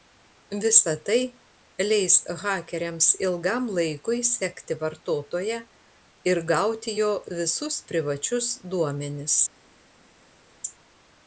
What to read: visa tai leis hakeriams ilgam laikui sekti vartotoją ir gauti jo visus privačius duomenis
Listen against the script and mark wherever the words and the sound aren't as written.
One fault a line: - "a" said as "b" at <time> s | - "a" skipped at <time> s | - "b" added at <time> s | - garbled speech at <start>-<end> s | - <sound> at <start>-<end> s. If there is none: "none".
none